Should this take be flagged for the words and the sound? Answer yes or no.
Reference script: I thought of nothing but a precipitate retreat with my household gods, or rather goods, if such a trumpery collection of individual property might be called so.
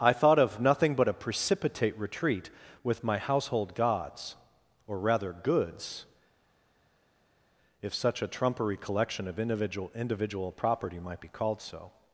yes